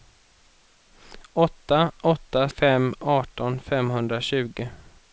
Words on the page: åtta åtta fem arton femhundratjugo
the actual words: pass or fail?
pass